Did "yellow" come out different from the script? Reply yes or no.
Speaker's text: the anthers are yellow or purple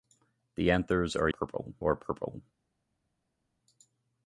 yes